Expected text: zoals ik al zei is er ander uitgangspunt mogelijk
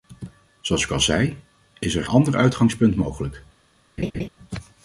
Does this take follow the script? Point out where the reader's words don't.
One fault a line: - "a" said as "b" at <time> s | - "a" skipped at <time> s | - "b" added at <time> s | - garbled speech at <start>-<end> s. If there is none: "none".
none